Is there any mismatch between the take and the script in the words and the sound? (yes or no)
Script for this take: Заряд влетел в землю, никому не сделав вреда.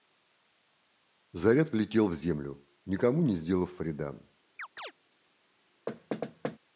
yes